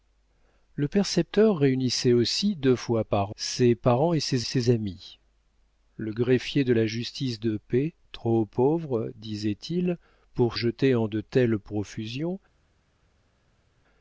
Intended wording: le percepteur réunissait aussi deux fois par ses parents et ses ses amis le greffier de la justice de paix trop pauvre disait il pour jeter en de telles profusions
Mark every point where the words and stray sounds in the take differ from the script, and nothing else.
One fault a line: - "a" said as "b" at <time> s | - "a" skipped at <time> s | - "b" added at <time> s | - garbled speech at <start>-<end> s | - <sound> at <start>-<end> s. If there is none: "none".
none